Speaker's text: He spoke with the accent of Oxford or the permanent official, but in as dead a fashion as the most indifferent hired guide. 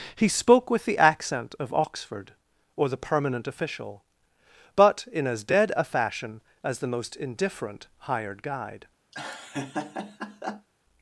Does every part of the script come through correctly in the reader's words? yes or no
yes